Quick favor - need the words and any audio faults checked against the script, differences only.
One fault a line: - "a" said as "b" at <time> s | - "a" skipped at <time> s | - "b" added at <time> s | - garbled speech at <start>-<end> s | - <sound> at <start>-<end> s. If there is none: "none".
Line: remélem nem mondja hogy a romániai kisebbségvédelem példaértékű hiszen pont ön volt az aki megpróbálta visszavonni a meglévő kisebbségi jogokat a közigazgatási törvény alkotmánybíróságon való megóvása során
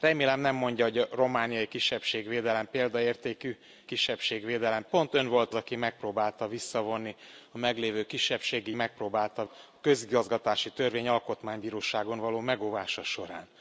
- "hiszen" said as "kisebbségvédelem" at 3.8 s
- "az" skipped at 5.5 s
- "jogokat" said as "megpróbálta" at 8.7 s